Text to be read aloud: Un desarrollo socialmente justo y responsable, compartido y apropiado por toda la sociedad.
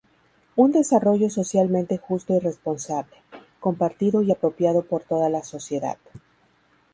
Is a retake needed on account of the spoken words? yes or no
no